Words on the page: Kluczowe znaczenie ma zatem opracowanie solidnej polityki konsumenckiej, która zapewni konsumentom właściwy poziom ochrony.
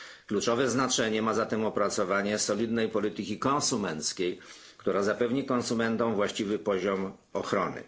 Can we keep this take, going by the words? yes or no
yes